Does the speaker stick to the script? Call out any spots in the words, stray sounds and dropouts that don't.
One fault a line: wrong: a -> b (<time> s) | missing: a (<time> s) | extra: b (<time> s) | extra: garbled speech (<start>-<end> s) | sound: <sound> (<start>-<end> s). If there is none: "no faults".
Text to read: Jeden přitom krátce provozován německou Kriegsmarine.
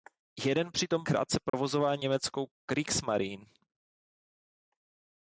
sound: dropout (1.5-1.5 s)